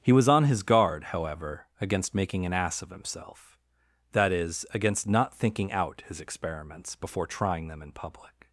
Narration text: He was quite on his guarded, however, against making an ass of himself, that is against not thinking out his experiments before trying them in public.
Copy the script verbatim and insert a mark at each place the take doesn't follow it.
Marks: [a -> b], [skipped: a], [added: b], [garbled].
He was [skipped: quite] on his [guarded, -> guard] however, against making an ass of himself, that is against not thinking out his experiments before trying them in public.